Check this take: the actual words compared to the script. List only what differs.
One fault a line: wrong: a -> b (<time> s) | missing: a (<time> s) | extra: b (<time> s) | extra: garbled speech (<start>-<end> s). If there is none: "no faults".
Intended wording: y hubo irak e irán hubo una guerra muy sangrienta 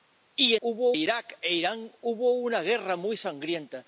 no faults